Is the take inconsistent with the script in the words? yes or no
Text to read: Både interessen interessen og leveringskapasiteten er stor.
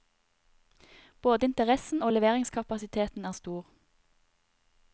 yes